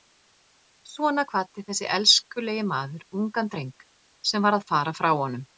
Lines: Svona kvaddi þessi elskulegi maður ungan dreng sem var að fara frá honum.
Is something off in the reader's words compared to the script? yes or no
no